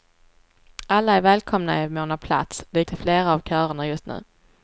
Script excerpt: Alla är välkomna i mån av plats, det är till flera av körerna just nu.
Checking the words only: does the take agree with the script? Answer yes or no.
yes